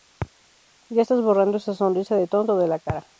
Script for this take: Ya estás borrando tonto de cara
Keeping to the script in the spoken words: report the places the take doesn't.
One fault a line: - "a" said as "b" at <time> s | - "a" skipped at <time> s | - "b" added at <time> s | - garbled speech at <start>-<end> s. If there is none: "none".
- "esa sonrisa de" added at 1.6 s
- "la" added at 2.7 s